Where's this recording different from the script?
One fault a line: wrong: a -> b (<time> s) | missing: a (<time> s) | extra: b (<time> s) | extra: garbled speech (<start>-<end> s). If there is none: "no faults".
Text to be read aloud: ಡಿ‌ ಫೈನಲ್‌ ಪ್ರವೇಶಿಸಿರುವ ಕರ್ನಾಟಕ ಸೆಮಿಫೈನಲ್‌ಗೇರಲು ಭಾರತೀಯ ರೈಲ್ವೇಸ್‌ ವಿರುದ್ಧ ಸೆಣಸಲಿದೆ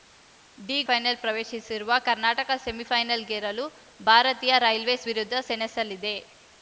no faults